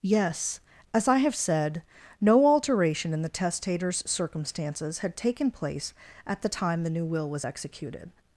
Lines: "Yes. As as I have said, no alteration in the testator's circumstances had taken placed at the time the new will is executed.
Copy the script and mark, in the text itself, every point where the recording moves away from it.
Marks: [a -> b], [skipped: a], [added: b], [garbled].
"Yes. As [skipped: as] I have said, no alteration in the testator's circumstances had taken [placed -> place] at the time the new will [is -> was] executed.